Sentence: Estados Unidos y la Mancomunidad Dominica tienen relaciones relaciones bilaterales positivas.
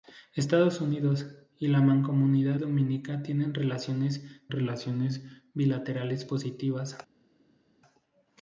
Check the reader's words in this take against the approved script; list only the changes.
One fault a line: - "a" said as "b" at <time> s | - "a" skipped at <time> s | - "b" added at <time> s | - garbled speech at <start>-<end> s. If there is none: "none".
none